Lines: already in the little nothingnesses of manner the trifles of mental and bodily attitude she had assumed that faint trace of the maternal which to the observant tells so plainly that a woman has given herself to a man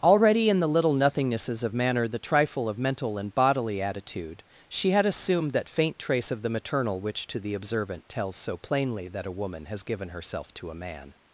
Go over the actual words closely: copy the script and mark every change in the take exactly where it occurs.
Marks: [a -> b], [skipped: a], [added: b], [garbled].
already in the little nothingnesses of manner the [trifles -> trifle] of mental and bodily attitude she had assumed that faint trace of the maternal which to the observant tells so plainly that a woman has given herself to a man